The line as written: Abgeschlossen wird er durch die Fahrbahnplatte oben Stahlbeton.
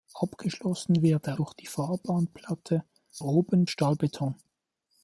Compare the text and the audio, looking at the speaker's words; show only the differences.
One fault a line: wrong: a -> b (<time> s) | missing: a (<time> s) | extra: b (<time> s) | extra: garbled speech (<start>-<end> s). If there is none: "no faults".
no faults